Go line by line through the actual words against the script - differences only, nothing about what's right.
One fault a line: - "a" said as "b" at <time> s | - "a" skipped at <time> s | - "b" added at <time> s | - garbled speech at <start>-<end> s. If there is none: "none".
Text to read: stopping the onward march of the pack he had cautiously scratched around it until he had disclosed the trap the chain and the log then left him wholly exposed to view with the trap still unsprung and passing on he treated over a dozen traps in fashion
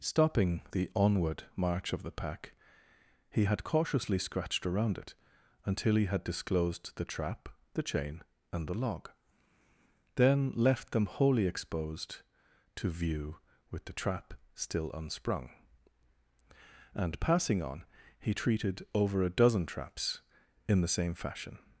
- "him" said as "them" at 10.9 s
- "the same" added at 20.8 s